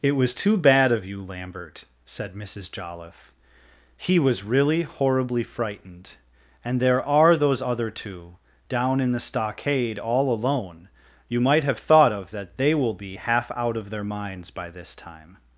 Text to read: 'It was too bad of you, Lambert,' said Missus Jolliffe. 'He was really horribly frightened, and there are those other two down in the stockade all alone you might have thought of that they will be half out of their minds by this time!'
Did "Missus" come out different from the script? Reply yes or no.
no